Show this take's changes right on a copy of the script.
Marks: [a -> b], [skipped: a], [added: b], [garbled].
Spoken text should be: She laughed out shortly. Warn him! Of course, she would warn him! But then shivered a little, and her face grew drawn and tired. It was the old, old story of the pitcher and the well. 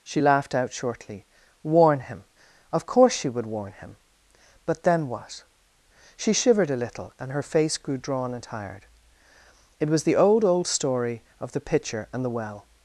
She laughed out shortly. Warn him! Of course, she would warn him! But then [added: what She] shivered a little, and her face grew drawn and tired. It was the old, old story of the pitcher and the well.